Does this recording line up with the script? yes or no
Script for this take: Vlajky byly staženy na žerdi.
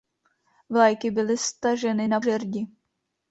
yes